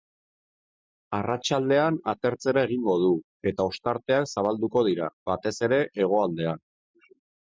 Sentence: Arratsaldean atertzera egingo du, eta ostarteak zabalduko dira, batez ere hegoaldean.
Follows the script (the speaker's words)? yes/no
yes